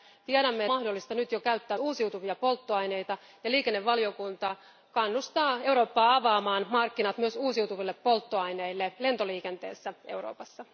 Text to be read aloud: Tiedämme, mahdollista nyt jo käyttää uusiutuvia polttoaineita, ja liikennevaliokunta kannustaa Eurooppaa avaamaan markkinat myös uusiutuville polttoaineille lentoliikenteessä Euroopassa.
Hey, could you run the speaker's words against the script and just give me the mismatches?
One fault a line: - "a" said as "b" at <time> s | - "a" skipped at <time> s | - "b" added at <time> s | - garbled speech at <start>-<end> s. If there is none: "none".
none